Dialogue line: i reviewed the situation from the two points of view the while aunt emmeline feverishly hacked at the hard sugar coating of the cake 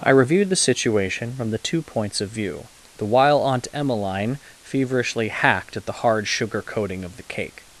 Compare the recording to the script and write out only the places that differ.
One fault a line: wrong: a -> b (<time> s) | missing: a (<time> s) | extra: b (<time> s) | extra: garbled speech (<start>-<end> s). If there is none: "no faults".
no faults